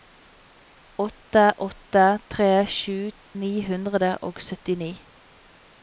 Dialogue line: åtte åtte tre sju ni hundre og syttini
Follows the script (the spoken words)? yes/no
yes